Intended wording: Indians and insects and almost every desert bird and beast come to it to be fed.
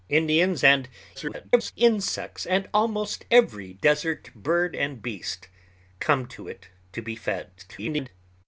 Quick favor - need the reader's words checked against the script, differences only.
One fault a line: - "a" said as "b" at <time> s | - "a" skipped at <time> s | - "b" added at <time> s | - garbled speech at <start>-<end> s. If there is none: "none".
- garbled speech at 1.1-1.7 s
- garbled speech at 7.6-8.1 s